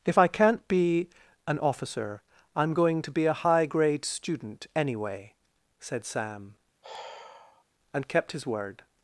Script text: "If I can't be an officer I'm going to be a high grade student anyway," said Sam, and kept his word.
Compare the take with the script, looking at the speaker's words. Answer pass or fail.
pass